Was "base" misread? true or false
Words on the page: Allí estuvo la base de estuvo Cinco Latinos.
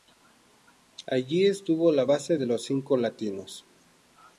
false